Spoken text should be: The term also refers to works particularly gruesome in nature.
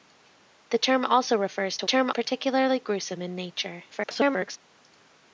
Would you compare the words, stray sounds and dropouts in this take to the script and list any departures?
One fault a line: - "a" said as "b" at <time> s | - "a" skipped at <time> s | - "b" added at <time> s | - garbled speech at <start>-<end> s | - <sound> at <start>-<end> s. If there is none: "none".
- "works" said as "term" at 1.8 s
- garbled speech at 3.9-4.6 s